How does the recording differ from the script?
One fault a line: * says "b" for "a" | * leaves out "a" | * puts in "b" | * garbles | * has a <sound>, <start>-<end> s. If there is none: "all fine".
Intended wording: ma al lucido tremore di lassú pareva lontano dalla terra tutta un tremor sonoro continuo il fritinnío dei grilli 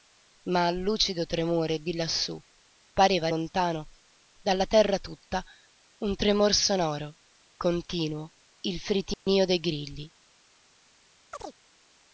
* has a dropout, 9.1-9.3 s
* has a chirp, 11.3-11.6 s